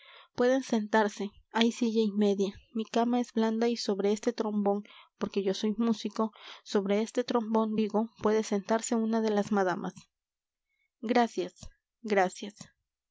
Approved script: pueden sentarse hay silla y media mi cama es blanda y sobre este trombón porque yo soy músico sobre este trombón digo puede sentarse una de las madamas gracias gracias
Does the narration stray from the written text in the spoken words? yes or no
no